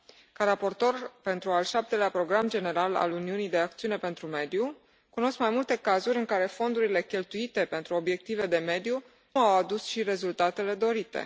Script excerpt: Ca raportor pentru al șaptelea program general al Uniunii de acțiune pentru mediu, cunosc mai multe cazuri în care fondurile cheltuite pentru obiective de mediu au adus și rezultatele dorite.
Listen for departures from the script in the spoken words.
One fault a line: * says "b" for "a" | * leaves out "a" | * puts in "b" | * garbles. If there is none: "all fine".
all fine